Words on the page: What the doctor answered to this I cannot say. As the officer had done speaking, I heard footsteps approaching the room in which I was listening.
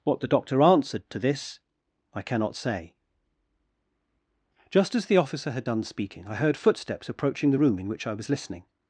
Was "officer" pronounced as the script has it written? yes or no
yes